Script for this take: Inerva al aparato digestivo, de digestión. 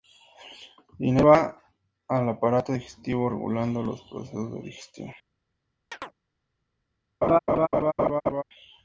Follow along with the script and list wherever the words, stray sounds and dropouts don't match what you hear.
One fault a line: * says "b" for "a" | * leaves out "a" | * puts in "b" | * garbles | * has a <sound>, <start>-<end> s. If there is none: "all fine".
* puts in "regulando los procesos"
* has a chirp, 5.9-6.1 s
* has a laugh, 7.2-8.4 s